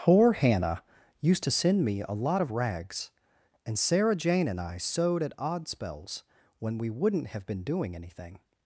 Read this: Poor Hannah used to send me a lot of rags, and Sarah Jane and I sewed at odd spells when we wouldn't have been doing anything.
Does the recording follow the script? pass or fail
pass